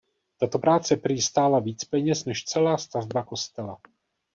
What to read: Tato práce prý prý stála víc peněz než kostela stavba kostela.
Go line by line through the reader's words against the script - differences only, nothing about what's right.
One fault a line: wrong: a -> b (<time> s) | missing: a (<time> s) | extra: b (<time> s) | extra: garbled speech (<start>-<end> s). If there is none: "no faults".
missing: prý (1.2 s)
wrong: kostela -> celá (2.4 s)